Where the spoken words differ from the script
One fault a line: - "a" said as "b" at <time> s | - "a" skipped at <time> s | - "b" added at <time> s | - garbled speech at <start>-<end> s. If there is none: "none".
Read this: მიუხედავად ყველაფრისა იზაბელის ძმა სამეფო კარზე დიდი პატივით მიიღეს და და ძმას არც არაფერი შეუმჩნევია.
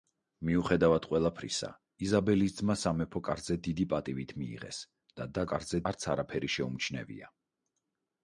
- "ძმას" said as "კარზე" at 5.5 s